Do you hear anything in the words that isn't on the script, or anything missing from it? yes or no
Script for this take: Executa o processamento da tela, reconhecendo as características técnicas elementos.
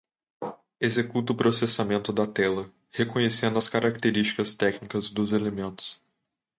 yes